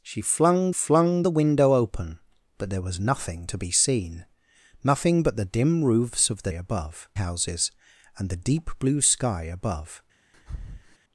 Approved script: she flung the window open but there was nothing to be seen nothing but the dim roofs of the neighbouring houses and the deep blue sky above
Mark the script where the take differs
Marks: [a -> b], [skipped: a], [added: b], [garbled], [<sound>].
she flung [added: flung] the window open but there was nothing to be seen nothing but the dim roofs of the [neighbouring -> above] houses and the deep blue sky above [breath]